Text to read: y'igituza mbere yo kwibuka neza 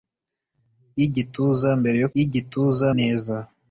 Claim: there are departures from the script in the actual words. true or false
true